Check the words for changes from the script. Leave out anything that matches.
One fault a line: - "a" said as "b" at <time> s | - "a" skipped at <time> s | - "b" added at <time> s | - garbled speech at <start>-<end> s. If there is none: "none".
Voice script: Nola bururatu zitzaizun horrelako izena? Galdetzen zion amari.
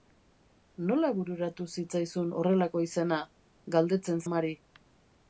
- "zion" skipped at 4.2 s